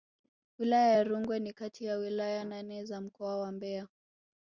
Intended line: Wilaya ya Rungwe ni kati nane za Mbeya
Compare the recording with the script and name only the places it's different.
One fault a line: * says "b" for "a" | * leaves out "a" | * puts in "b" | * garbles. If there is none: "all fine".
* puts in "ya wilaya"
* puts in "mkoa wa"